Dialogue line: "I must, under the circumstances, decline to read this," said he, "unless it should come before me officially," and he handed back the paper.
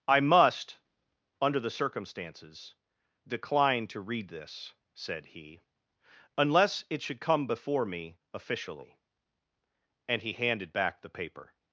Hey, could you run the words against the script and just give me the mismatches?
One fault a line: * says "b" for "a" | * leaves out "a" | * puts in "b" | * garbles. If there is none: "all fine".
all fine